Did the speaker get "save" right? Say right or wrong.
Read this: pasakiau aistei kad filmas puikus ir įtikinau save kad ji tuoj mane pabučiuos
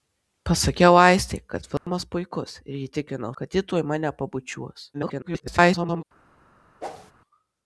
wrong